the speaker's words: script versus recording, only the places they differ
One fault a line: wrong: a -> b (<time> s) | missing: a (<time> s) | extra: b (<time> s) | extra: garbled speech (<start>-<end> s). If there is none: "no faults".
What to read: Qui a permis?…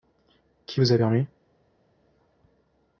extra: vous (0.8 s)